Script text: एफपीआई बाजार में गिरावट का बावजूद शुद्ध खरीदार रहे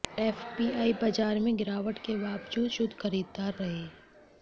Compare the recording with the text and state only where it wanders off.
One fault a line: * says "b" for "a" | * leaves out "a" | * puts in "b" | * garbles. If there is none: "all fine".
* says "के" for "का"